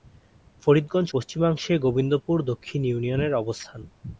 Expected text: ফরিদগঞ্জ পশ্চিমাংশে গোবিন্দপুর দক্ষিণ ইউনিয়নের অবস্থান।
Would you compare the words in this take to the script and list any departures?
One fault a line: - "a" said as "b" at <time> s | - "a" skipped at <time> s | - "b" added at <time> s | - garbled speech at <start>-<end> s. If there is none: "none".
none